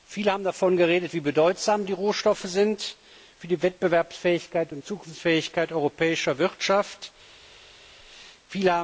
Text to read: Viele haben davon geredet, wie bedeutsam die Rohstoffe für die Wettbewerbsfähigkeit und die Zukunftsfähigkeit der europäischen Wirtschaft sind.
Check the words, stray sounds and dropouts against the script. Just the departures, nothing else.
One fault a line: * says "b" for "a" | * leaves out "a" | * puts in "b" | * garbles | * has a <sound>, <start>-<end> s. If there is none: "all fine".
* leaves out "die"